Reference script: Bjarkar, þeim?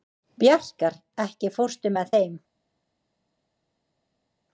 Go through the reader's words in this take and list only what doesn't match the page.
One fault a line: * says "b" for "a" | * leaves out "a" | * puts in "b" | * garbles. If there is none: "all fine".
* puts in "ekki fórstu með"